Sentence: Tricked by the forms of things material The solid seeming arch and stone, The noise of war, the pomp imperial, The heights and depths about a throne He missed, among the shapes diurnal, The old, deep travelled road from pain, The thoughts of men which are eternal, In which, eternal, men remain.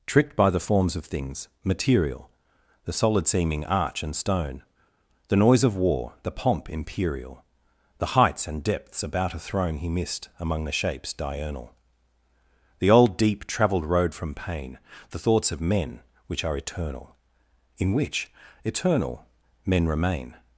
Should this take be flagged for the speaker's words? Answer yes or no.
no